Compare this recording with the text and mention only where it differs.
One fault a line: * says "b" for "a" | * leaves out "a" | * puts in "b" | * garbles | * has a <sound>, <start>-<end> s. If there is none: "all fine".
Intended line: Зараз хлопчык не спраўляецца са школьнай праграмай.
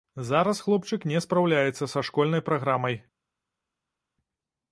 all fine